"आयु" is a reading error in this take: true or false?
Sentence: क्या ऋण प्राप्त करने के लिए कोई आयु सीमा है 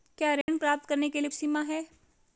true